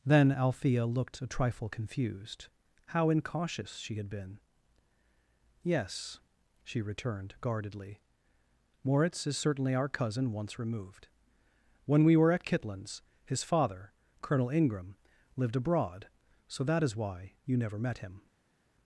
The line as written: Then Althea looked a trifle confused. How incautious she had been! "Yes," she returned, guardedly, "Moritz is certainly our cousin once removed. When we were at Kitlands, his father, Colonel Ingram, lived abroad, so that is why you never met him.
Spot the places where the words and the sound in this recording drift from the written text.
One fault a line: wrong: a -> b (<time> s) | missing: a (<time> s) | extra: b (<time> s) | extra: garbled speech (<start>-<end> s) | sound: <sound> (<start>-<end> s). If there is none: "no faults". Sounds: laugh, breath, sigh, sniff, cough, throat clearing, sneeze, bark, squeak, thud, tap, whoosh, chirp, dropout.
no faults